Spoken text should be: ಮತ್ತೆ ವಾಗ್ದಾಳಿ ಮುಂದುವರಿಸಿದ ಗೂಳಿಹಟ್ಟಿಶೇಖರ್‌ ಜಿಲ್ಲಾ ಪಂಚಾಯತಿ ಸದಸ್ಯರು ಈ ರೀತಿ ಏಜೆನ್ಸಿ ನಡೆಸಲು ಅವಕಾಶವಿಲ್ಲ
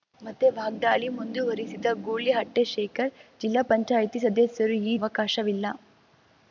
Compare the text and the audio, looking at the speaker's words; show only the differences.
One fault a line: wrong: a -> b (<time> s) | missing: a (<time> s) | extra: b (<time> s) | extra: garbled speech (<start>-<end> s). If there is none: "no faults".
missing: ರೀತಿ ಏಜೆನ್ಸಿ ನಡೆಸಲು (5.0 s)